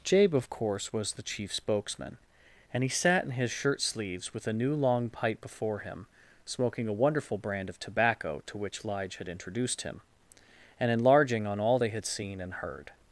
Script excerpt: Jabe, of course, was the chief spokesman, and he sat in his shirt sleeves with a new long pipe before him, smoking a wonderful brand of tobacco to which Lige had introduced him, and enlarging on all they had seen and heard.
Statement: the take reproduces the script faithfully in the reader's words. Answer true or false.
true